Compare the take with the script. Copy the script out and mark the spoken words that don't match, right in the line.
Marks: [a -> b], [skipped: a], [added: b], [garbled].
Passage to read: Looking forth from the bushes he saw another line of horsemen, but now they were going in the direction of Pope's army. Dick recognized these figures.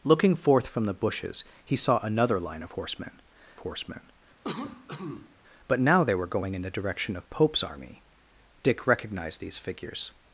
Looking forth from the bushes he saw another line of horsemen, [added: horsemen] but now they were going in the direction of Pope's army. Dick recognized these figures.